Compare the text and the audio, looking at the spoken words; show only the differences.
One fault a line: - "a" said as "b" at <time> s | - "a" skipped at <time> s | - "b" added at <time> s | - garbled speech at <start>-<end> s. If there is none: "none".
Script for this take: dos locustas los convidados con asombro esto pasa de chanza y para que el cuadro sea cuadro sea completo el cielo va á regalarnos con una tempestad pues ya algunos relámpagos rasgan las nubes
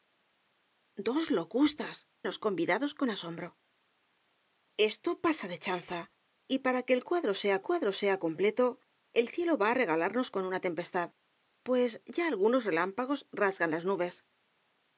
none